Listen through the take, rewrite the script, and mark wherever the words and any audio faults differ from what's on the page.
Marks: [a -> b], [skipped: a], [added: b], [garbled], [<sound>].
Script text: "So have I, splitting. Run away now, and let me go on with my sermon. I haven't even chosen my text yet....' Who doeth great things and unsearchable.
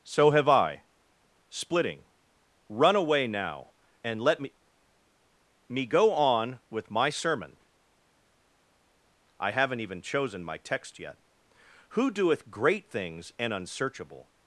"So have I, splitting. Run away now, and let me [added: me] go on with my sermon. I haven't even chosen my text yet....' Who doeth great things and unsearchable.